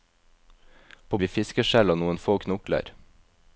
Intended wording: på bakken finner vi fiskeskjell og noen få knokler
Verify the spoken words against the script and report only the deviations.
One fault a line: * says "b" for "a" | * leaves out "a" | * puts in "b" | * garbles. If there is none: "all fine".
* leaves out "bakken finner"